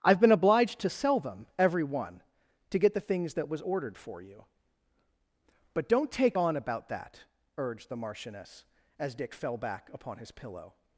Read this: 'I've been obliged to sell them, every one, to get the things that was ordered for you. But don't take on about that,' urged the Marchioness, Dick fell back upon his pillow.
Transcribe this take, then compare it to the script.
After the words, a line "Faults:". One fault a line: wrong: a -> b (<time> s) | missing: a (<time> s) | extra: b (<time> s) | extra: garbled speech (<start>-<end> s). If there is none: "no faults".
'I've been obliged to sell them, every one, to get the things that was ordered for you. But don't take on about that,' urged the Marchioness, as Dick fell back upon his pillow.
Faults:
extra: as (9.0 s)